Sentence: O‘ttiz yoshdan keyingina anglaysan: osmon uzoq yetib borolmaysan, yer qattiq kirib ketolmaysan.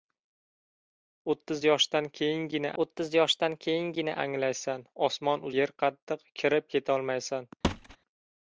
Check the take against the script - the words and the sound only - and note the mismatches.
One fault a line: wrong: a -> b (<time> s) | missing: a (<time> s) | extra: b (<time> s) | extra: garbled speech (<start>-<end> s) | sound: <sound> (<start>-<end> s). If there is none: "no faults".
wrong: anglaysan osmon uzoq yetib borolmaysan -> o‘ttiz yoshdan keyingina anglaysan osmon (2.8 s)
sound: thud (7.6-8.0 s)